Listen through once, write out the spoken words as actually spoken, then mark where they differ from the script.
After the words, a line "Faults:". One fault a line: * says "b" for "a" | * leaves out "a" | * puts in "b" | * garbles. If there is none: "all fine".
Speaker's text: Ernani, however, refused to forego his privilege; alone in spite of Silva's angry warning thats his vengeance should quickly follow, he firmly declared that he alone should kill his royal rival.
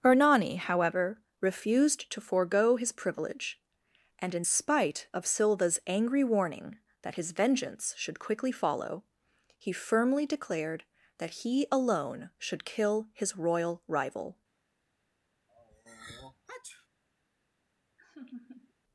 Ernani, however, refused to forego his privilege; and in spite of Silva's angry warning that his vengeance should quickly follow, he firmly declared that he alone should kill his royal rival.
Faults:
* says "and" for "alone"
* says "that" for "thats"